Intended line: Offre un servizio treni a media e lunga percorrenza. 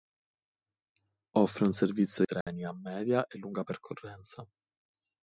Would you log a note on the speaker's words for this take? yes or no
no